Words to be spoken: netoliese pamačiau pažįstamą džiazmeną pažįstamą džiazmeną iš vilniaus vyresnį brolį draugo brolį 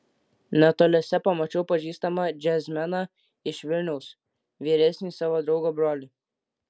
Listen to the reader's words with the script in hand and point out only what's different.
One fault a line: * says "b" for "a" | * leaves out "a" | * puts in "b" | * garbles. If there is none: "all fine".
* leaves out "pažįstamą džiazmeną"
* says "savo" for "brolį"